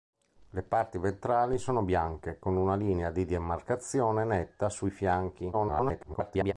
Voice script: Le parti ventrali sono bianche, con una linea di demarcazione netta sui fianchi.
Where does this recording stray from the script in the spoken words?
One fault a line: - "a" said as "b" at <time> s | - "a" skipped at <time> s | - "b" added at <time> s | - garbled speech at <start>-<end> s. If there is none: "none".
- garbled speech at 5.5-6.5 s